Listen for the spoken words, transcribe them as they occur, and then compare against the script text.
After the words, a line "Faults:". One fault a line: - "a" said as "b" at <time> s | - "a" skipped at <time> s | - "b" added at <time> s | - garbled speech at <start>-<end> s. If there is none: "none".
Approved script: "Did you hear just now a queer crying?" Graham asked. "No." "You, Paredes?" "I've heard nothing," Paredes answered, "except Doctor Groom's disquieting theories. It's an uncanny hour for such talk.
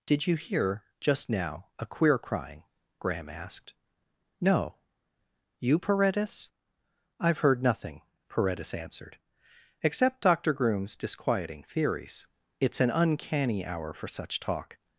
"Did you hear just now a queer crying?" Graham asked. "No." "You, Paredes?" "I've heard nothing," Paredes answered, "except Doctor Groom's disquieting theories. It's an uncanny hour for such talk.
Faults:
none